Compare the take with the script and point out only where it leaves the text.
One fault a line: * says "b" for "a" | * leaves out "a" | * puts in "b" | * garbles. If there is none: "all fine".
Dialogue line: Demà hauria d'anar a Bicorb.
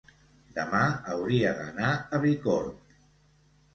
all fine